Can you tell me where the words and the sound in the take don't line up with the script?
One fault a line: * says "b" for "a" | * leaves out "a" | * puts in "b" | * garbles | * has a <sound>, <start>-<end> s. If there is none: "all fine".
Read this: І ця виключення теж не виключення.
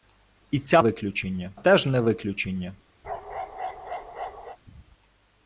* has a bark, 3.0-4.6 s